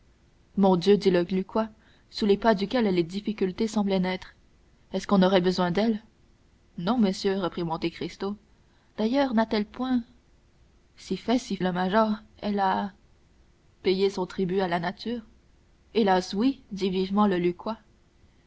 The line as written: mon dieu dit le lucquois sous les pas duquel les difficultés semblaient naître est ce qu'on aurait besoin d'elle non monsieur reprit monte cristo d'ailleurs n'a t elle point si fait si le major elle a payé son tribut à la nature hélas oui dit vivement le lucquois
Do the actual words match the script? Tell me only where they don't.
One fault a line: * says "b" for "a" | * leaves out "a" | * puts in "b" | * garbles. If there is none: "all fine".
all fine